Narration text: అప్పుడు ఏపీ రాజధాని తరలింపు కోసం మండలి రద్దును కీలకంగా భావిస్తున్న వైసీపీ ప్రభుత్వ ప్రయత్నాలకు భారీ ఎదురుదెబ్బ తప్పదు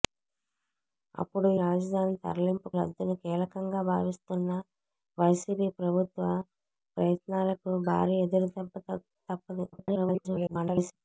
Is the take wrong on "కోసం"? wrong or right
wrong